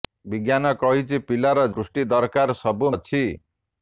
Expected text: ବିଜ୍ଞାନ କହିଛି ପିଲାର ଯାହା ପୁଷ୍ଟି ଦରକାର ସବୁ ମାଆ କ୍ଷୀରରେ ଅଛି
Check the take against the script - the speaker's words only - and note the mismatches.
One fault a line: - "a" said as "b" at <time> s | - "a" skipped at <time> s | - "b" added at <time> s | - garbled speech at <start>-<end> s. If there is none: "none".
- "ଯାହା" skipped at 1.7 s
- "ମାଆ କ୍ଷୀରରେ" skipped at 2.9 s